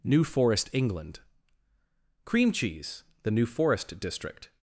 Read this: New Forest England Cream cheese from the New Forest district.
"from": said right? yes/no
no